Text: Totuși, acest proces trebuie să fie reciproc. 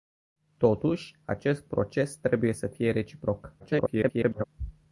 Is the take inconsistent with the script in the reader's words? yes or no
yes